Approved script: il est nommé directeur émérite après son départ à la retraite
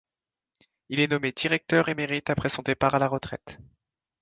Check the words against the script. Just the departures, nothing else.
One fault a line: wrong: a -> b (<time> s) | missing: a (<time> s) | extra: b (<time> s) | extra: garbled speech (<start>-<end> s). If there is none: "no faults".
no faults